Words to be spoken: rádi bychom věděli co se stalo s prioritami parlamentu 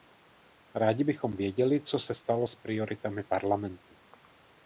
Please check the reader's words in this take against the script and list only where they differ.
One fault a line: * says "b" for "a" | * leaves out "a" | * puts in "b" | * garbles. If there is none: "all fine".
all fine